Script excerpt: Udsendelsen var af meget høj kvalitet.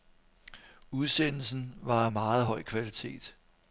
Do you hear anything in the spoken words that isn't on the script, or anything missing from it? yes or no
no